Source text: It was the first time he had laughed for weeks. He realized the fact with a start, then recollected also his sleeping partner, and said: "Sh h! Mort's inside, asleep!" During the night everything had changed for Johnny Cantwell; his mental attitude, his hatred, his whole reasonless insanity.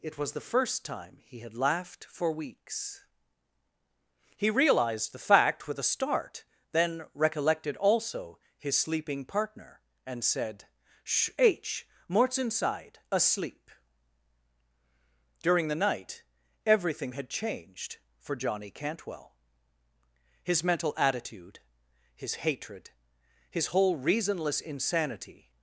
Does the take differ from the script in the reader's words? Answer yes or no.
no